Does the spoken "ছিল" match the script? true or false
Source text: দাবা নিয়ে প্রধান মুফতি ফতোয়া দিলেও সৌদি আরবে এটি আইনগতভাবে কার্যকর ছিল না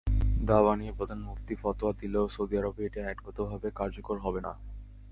false